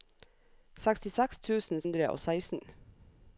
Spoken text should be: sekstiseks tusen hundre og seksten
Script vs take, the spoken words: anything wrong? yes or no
no